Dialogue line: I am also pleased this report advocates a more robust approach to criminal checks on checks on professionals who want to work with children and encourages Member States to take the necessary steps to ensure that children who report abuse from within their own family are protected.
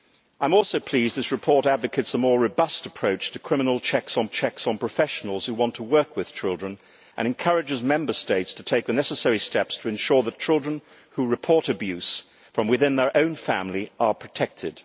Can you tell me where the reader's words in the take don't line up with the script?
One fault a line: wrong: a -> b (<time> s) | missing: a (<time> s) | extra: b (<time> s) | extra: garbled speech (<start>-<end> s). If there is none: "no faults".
no faults